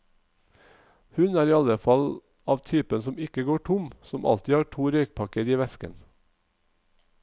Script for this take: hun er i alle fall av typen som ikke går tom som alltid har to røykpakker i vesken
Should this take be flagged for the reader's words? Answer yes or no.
no